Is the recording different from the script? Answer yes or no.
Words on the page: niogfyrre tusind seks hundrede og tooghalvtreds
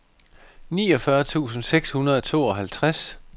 no